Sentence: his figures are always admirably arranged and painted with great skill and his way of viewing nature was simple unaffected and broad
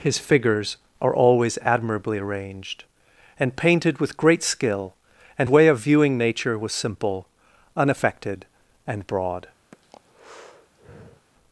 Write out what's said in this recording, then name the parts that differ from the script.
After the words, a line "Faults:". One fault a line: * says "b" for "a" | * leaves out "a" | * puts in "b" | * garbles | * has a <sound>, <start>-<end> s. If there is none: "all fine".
his figures are always admirably arranged and painted with great skill and way of viewing nature was simple unaffected and broad
Faults:
* leaves out "his"
* has a breath, 9.7-11.3 s